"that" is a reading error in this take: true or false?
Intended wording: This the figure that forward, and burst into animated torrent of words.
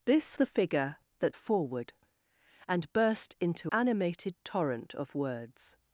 false